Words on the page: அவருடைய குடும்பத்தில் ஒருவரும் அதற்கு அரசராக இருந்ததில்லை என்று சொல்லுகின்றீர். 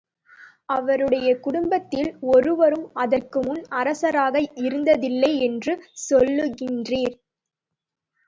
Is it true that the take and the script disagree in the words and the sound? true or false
true